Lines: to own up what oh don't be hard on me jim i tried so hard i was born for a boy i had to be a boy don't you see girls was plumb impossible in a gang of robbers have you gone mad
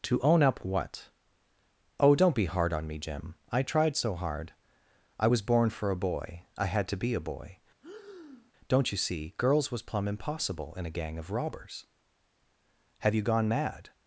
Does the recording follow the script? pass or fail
pass